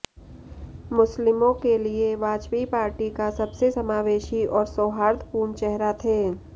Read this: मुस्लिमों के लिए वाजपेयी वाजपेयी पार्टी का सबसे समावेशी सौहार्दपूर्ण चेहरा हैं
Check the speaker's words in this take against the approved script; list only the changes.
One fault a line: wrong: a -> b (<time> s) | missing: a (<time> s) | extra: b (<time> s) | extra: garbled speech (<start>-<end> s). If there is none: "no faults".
missing: वाजपेयी (2.6 s)
extra: और (4.5 s)
wrong: हैं -> थे (6.0 s)